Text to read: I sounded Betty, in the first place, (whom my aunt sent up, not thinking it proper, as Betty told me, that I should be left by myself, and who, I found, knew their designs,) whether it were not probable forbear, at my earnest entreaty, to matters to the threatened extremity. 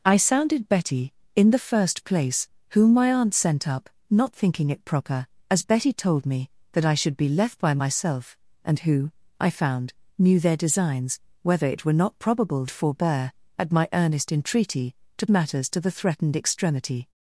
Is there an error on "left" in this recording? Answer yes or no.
no